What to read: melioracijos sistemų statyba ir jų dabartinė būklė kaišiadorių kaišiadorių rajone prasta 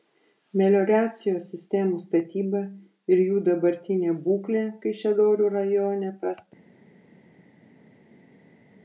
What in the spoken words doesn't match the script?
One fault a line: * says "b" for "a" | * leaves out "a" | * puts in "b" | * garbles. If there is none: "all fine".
* leaves out "kaišiadorių"